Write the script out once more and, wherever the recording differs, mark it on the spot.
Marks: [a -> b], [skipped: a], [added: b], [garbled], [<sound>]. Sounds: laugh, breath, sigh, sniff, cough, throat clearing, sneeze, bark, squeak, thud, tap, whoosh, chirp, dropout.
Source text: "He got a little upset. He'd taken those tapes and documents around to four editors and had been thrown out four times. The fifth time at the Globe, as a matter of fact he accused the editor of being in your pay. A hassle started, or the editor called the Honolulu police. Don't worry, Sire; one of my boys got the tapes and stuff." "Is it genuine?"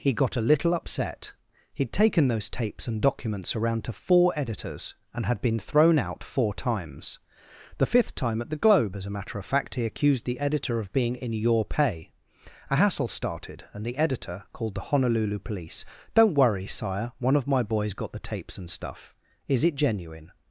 "He got a little upset. He'd taken those tapes and documents around to four editors and had been thrown out four times. The fifth time at the Globe, as a matter of fact he accused the editor of being in your pay. A hassle started, [or -> and] the editor called the Honolulu police. Don't worry, Sire; one of my boys got the tapes and stuff." "Is it genuine?"